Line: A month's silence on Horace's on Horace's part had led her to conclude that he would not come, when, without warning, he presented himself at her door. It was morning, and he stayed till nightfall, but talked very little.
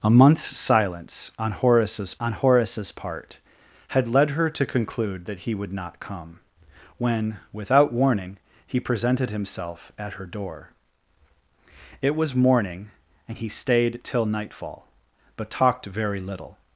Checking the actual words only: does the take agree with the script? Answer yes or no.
yes